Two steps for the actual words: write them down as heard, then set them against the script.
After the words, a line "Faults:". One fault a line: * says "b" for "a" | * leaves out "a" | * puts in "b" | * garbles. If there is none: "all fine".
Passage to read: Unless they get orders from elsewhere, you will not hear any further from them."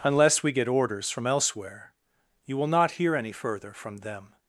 Unless we get orders from elsewhere, you will not hear any further from them."
Faults:
* says "we" for "they"